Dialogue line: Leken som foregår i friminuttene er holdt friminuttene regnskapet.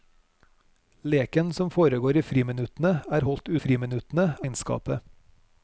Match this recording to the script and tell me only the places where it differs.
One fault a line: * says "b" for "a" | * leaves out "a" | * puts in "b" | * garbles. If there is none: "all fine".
all fine